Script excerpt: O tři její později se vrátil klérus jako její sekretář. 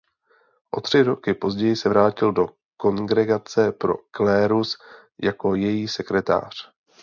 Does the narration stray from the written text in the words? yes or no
yes